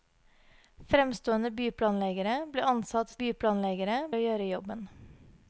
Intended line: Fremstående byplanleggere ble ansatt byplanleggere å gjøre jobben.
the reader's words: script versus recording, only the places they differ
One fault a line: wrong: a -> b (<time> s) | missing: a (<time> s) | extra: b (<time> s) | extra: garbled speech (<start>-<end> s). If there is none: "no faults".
no faults